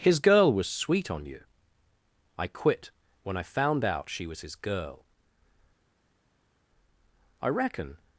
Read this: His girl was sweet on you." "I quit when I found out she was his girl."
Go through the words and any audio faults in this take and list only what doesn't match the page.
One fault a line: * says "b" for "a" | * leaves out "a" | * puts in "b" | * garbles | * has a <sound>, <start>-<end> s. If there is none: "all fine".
* puts in "I reckon"